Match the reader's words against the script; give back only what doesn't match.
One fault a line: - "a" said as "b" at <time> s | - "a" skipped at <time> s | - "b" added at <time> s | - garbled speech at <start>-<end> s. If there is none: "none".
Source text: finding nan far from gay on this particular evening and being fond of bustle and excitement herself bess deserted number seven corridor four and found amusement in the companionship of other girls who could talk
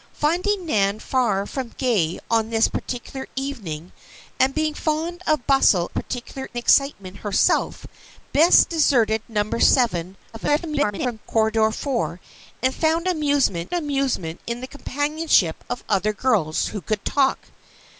- "and" said as "particular" at 5.9 s
- garbled speech at 10.3-11.2 s
- "amusement" added at 13.7 s